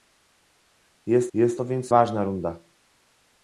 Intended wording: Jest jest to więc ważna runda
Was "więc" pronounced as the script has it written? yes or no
yes